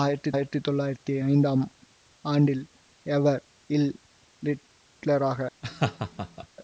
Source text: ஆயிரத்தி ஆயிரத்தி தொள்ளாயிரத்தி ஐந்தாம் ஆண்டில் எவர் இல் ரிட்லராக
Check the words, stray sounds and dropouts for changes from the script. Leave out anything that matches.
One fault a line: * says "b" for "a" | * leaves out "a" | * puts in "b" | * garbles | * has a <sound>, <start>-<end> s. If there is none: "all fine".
* has a laugh, 5.6-6.5 s